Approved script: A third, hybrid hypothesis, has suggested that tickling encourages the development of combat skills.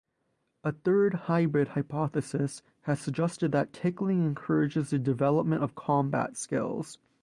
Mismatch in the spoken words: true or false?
false